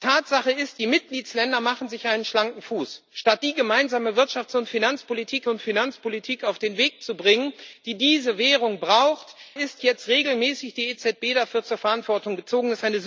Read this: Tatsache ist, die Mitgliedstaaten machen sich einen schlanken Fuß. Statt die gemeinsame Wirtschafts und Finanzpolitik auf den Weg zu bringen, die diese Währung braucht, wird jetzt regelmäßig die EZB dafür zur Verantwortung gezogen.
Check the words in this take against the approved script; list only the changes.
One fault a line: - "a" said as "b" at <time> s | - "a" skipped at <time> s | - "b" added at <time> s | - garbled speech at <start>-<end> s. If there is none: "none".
- "und Finanzpolitik" added at 5.5 s
- "wird" said as "ist" at 9.5 s